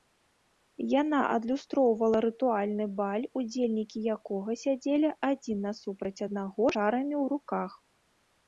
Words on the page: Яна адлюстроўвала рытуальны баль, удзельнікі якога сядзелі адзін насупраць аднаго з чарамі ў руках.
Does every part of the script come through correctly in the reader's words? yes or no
no